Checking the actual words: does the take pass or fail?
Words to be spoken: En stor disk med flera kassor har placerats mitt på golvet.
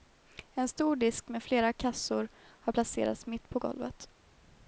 pass